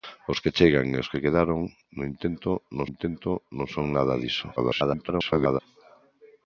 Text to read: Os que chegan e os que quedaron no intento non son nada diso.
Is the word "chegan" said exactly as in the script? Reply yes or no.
yes